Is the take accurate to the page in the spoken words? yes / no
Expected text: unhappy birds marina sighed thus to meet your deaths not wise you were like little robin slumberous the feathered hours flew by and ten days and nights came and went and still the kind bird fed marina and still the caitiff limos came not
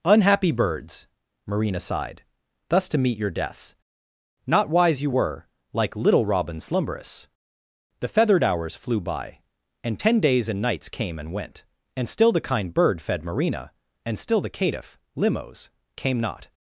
yes